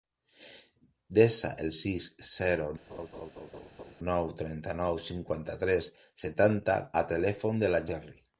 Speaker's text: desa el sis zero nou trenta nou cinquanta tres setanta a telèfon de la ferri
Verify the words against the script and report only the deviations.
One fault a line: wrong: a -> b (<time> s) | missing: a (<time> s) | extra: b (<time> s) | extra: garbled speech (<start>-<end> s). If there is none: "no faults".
no faults